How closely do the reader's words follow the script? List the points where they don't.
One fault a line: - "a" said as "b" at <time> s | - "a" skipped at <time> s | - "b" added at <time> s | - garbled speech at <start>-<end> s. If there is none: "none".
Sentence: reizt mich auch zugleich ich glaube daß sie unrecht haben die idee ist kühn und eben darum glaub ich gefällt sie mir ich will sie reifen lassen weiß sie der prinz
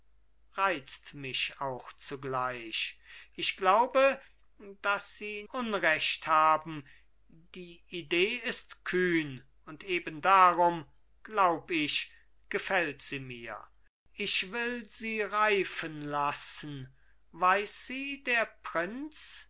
none